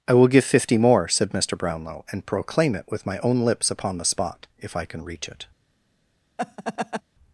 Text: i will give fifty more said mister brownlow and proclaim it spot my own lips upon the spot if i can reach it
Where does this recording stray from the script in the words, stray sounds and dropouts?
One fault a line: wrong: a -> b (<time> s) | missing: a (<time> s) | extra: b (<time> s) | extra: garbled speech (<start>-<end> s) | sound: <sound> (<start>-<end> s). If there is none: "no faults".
wrong: spot -> with (2.9 s)
sound: laugh (6.4-7.0 s)